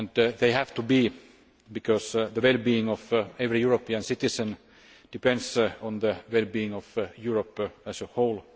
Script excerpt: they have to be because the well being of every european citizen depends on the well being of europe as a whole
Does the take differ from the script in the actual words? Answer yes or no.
no